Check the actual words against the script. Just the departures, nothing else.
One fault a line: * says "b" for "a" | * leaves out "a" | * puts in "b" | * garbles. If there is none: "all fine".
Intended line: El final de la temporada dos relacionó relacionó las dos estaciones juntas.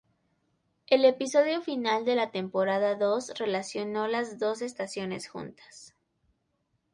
* puts in "episodio"
* leaves out "relacionó"